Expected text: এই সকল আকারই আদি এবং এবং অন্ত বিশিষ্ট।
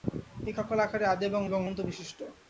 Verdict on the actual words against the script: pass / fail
pass